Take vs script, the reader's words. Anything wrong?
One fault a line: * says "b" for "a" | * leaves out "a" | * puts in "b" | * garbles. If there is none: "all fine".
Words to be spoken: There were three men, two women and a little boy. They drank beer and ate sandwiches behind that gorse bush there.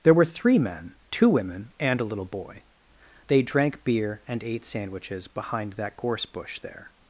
all fine